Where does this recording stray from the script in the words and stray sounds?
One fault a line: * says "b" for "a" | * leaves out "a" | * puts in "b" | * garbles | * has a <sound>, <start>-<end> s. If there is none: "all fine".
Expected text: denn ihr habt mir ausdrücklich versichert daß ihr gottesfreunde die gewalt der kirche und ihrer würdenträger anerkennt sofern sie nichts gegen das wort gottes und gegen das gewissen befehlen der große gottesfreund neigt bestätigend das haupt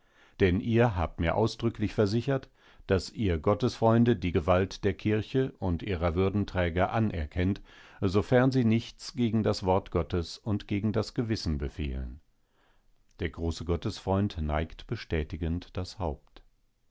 all fine